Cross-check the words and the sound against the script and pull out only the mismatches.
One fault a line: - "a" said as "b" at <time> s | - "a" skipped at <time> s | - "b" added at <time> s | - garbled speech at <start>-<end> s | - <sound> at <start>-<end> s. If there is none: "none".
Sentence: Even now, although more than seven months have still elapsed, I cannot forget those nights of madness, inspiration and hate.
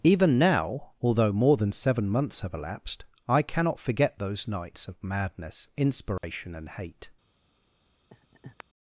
- "still" skipped at 2.5 s
- dropout at 6.2-6.2 s
- laugh at 8.1-8.6 s